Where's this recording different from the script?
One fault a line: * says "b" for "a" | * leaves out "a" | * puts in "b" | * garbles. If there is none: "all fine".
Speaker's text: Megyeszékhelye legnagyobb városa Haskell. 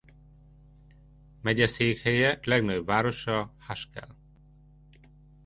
all fine